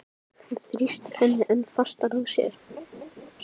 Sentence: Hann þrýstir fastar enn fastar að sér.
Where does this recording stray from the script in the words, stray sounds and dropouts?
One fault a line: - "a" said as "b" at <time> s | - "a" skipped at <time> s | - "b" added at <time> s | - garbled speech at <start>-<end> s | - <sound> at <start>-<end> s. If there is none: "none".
- "fastar" said as "henni" at 1.2 s
- laugh at 2.7-3.3 s